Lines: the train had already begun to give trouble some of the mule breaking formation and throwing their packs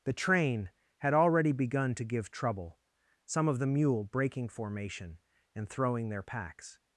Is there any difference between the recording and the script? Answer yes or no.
no